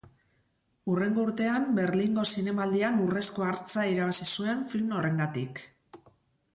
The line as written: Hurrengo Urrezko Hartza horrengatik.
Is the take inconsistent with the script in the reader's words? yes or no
yes